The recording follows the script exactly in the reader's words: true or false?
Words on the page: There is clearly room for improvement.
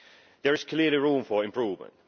true